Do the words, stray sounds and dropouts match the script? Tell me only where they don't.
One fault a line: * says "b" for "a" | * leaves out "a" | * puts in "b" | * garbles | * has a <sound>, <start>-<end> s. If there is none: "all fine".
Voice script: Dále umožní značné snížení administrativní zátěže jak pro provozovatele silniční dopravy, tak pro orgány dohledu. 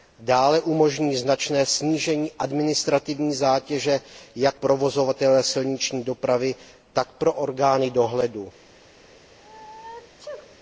* leaves out "pro"
* has a sneeze, 9.3-10.6 s